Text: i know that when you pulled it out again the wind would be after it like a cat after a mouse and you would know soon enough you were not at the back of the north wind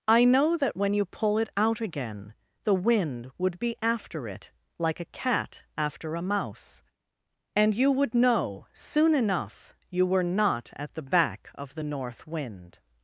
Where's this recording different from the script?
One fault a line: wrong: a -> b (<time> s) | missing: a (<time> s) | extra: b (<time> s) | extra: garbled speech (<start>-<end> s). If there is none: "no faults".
wrong: pulled -> pull (1.1 s)